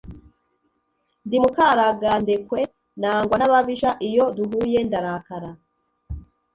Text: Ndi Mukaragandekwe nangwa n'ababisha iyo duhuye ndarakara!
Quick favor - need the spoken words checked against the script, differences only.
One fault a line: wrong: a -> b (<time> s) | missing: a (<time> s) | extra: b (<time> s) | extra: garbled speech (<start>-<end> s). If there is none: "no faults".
no faults